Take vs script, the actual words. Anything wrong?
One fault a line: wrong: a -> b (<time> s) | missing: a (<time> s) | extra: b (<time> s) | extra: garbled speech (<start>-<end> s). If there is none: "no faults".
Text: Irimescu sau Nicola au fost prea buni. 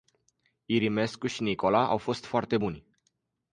wrong: sau -> și (1.3 s)
wrong: prea -> foarte (2.2 s)